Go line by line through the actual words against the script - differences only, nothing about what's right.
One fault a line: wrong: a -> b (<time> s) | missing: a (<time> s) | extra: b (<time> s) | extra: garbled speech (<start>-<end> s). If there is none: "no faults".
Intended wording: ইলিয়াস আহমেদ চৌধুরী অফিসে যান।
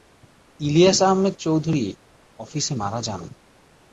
extra: মারা (2.7 s)